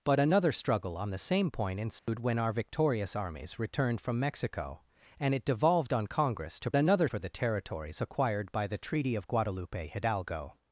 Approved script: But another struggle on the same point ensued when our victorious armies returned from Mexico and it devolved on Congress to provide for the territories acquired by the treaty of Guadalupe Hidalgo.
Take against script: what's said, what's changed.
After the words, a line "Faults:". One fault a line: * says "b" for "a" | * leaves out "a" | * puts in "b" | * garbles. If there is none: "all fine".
But another struggle on the same point ensued when our victorious armies returned from Mexico and it devolved on Congress to another for the territories acquired by the treaty of Guadalupe Hidalgo.
Faults:
* says "another" for "provide"